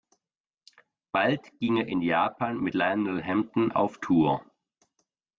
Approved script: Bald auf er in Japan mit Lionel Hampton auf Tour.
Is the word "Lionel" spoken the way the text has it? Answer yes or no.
yes